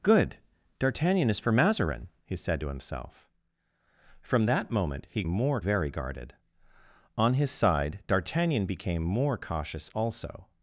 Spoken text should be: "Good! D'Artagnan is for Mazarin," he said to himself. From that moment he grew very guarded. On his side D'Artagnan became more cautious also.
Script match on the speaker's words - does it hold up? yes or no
no